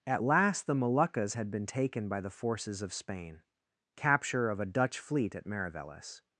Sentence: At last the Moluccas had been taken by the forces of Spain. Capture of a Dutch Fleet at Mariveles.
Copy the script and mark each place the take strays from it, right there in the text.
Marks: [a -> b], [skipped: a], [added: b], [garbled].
At last the Moluccas had been taken by the forces of Spain. Capture of a Dutch Fleet at Mariveles.